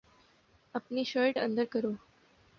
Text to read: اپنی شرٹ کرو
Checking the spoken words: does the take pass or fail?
fail